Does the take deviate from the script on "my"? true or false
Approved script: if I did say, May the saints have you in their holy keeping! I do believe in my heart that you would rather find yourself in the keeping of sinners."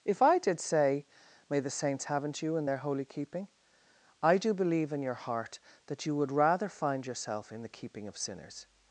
true